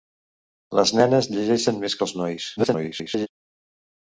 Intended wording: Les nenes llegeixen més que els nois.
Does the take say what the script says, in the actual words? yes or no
no